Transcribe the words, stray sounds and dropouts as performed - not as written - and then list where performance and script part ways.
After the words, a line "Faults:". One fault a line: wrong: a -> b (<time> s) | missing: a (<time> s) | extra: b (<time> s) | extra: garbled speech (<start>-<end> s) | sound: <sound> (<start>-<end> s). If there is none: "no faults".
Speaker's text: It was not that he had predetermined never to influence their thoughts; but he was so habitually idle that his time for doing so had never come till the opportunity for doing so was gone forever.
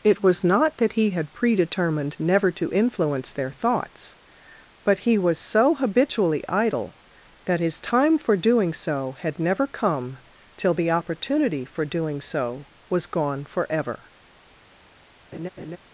It was not that he had predetermined never to influence their thoughts; but he was so habitually idle that his time for doing so had never come till the opportunity for doing so was gone forever.
Faults:
sound: laugh (15.3-15.8 s)